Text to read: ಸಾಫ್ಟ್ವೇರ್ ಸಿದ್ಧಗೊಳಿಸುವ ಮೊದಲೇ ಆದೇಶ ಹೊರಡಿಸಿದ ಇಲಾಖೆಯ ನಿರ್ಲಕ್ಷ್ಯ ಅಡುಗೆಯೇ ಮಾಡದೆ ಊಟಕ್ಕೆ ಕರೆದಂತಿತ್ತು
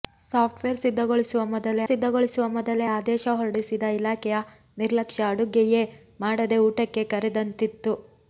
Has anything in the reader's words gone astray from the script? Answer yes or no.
yes